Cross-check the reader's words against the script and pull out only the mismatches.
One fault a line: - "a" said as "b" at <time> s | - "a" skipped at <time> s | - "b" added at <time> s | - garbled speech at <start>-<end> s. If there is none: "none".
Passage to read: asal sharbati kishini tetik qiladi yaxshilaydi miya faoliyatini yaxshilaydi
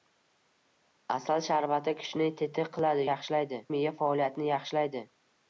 none